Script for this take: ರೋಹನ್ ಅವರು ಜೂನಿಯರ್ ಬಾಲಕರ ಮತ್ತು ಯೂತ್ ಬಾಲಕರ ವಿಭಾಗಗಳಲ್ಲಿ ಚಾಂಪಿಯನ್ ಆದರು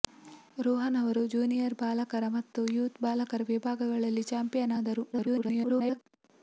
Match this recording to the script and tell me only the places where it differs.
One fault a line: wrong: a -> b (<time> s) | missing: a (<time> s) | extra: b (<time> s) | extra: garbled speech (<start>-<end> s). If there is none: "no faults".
extra: garbled speech (5.1-6.0 s)